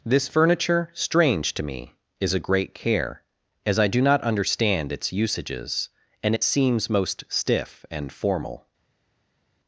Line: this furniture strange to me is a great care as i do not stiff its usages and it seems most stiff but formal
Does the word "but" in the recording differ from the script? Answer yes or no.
yes